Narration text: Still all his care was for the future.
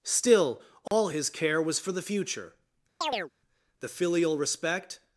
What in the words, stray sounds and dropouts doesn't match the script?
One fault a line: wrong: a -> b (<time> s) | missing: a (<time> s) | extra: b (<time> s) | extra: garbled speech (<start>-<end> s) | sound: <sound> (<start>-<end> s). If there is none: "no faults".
sound: dropout (0.9-0.9 s)
sound: chirp (3.0-3.3 s)
extra: The filial respect (3.8 s)